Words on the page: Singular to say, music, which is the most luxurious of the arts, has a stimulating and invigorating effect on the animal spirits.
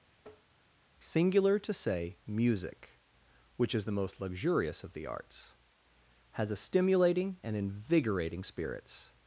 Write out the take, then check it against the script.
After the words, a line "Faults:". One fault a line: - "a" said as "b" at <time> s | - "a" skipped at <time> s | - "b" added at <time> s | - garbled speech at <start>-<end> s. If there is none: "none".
Singular to say, music, which is the most luxurious of the arts, has a stimulating and invigorating spirits.
Faults:
- "effect on the animal" skipped at 8.4 s